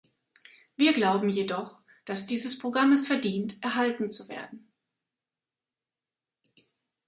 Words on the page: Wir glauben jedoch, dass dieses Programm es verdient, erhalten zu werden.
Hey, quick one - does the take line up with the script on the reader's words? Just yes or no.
yes